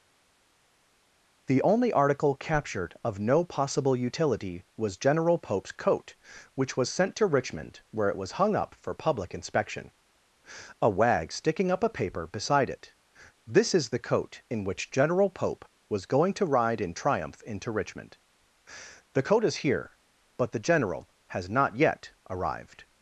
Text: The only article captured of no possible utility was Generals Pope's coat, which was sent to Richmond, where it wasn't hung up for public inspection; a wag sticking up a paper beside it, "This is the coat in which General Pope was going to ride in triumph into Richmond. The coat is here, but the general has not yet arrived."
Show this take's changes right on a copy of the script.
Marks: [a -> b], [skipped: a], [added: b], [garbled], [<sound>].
The only article captured of no possible utility was [Generals -> General] Pope's coat, which was sent to Richmond, where it [wasn't -> was] hung up for public inspection; a wag sticking up a paper beside it, "This is the coat in which General Pope was going to ride in triumph into Richmond. The coat is here, but the general has not yet arrived."